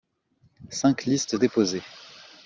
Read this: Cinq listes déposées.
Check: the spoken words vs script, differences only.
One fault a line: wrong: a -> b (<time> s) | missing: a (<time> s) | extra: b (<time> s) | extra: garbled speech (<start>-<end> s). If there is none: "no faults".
no faults